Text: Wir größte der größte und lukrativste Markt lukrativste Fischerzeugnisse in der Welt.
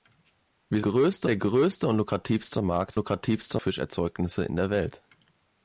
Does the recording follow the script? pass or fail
pass